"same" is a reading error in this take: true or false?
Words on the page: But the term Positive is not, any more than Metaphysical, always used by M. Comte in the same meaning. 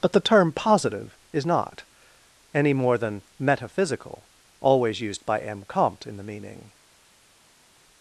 true